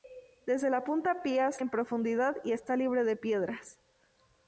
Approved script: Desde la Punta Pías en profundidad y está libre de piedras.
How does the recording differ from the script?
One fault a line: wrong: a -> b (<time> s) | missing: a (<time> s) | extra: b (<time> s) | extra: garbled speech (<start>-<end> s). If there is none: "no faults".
no faults